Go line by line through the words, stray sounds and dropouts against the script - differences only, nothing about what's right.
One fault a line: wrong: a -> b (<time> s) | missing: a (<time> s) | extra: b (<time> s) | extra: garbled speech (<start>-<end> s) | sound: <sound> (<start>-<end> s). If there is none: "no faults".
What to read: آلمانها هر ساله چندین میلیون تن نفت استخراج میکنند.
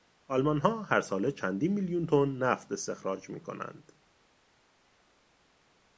no faults